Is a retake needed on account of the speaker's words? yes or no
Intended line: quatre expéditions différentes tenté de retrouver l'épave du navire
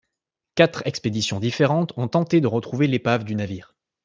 yes